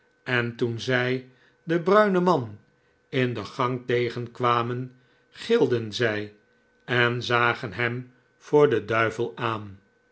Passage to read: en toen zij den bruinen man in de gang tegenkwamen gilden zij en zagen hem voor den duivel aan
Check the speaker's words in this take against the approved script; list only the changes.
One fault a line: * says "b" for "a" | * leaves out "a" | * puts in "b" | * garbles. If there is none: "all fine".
all fine